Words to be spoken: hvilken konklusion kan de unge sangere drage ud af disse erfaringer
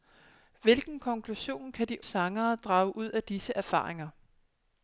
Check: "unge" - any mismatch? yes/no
yes